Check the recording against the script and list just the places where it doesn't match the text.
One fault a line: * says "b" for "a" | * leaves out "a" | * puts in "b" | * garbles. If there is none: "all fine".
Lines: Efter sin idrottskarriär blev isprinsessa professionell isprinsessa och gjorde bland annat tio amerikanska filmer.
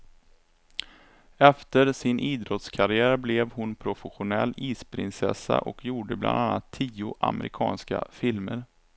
* says "hon" for "isprinsessa"